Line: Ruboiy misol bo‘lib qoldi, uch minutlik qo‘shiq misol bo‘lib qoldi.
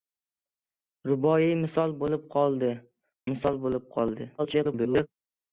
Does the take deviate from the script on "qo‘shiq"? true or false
true